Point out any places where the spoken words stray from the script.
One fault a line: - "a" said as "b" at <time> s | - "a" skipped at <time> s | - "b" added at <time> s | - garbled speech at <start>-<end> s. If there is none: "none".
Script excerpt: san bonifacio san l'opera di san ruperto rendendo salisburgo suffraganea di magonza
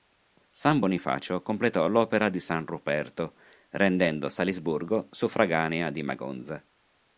- "san" said as "completò" at 1.4 s